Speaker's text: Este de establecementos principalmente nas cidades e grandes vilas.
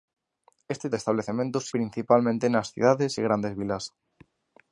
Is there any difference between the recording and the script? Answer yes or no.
no